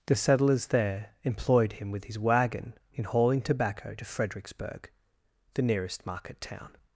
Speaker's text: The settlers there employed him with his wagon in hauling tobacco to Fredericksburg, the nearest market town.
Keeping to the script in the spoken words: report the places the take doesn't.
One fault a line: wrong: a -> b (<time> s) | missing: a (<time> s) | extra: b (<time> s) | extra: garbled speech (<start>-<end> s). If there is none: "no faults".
no faults